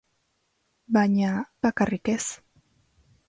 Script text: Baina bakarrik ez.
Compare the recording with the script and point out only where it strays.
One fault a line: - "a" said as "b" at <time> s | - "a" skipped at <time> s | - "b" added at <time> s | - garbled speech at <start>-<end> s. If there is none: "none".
none